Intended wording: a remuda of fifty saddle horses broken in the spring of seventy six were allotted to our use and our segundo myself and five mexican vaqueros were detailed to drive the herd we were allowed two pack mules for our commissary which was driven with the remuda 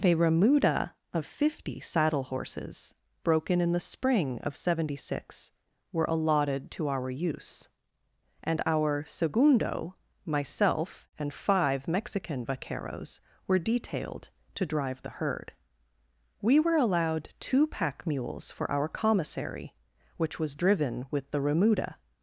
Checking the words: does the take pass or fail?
pass